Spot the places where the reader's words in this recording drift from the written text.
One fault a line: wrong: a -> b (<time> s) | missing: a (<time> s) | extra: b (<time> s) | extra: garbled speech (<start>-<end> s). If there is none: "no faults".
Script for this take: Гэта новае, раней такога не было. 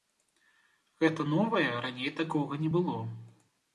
no faults